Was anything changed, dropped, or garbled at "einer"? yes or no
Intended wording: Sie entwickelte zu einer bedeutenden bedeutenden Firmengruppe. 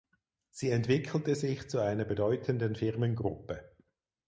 no